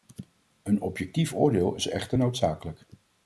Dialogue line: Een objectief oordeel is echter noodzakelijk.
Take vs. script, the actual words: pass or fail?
pass